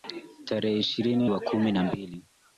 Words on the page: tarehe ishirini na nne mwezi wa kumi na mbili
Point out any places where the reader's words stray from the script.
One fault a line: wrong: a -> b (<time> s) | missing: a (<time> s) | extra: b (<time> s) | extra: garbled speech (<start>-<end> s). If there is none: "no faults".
missing: na nne mwezi (1.3 s)